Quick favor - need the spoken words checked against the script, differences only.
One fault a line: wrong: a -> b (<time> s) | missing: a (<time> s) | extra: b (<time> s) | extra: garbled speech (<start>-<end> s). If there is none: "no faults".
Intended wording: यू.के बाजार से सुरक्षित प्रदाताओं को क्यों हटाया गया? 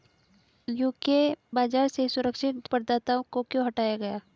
no faults